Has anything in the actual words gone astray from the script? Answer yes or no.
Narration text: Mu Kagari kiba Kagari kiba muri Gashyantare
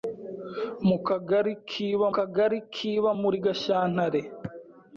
no